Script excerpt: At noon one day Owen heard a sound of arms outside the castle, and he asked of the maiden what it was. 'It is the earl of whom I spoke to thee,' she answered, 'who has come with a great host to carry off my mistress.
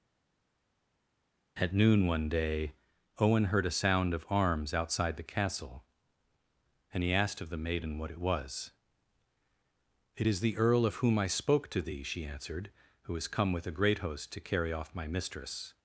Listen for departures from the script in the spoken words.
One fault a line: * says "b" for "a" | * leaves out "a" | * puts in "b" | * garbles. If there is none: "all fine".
all fine